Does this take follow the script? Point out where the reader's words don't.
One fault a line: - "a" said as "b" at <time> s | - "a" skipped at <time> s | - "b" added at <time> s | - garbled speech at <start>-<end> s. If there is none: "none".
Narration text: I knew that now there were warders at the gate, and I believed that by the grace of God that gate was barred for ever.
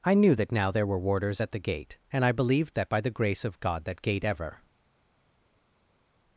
- "was barred for" skipped at 4.2 s